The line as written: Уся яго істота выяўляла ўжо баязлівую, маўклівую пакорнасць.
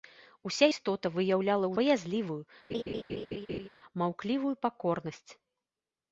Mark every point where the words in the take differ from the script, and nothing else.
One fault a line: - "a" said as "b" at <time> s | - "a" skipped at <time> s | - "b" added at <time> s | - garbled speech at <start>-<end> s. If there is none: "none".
- "яго" skipped at 0.7 s
- "ўжо" skipped at 1.7 s